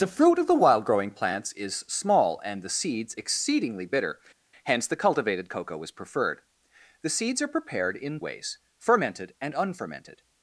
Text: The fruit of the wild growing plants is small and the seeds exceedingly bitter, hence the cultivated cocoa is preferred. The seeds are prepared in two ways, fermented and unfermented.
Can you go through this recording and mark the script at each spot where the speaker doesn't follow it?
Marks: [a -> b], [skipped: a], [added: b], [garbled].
The fruit of the wild growing plants is small and the seeds exceedingly bitter, hence the cultivated cocoa is preferred. The seeds are prepared in [skipped: two] ways, fermented and unfermented.